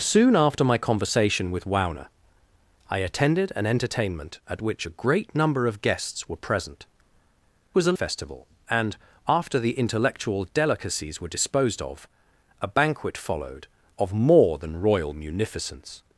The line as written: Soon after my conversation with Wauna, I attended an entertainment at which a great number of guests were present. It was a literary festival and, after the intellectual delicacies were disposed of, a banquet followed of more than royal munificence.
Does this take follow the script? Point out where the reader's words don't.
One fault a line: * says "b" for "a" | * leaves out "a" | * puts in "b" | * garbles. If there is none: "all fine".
* leaves out "It"
* leaves out "literary"